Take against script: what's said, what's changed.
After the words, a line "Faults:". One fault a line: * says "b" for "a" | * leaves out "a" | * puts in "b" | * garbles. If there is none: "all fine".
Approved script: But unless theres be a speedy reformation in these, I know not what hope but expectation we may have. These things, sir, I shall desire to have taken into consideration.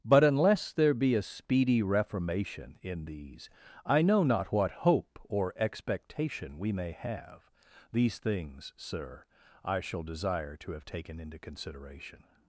But unless there be a speedy reformation in these, I know not what hope or expectation we may have. These things, sir, I shall desire to have taken into consideration.
Faults:
* says "there" for "theres"
* says "or" for "but"